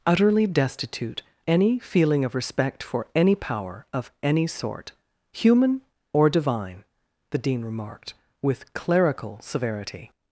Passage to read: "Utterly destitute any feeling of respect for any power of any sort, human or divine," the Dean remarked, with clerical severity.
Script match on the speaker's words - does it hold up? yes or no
yes